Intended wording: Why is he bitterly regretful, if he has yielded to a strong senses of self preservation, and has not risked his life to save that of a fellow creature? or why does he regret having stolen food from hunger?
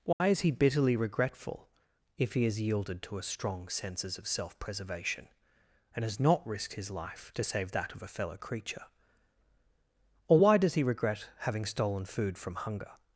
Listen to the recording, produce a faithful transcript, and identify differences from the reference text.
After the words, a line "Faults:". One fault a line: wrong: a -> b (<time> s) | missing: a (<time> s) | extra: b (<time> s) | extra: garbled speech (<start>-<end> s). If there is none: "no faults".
Why is he bitterly regretful, if he has yielded to a strong senses of self preservation, and has not risked his life to save that of a fellow creature? or why does he regret having stolen food from hunger?
Faults:
no faults